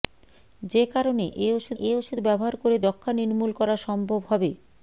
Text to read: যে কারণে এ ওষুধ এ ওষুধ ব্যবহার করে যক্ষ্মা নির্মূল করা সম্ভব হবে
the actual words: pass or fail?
pass